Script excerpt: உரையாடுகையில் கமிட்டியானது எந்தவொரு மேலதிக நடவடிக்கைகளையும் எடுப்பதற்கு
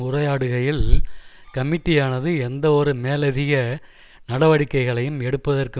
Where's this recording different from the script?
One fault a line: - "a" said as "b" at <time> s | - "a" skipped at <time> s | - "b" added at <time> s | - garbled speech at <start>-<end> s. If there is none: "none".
none